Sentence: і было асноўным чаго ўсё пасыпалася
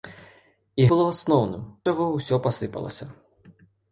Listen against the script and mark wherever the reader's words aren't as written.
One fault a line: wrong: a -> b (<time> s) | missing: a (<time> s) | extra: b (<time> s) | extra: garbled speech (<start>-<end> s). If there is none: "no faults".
no faults